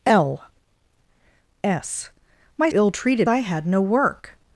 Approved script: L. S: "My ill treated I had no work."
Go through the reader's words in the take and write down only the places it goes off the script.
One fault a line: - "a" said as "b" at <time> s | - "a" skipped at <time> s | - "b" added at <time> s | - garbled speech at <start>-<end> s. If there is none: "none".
none